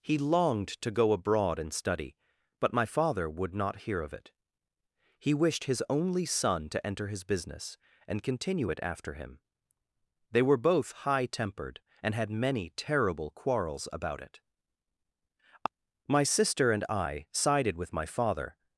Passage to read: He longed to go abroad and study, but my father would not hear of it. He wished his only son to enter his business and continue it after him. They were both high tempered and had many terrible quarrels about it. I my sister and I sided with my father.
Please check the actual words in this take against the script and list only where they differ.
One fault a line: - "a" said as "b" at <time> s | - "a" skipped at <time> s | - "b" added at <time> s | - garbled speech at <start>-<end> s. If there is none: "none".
- "I" skipped at 14.4 s